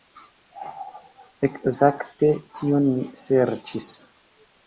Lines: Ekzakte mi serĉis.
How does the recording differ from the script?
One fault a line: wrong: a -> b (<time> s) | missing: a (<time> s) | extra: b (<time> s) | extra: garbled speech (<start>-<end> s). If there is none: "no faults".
extra: tion (2.6 s)